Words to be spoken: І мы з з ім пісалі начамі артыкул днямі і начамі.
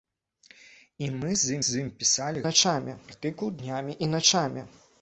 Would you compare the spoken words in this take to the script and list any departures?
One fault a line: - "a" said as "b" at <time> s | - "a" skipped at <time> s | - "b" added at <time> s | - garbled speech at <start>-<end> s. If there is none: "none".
none